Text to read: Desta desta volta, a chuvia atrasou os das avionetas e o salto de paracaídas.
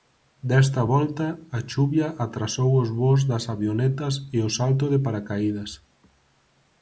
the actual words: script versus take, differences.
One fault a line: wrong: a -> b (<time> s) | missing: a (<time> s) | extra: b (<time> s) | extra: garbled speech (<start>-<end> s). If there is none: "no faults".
missing: desta (0.8 s)
extra: voos (3.0 s)